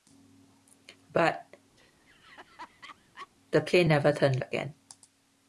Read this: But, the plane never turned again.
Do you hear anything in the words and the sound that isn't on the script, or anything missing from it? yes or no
yes